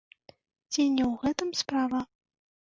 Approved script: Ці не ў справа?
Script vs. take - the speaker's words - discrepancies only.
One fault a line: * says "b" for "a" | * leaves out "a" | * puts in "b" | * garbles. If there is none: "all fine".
* puts in "гэтым"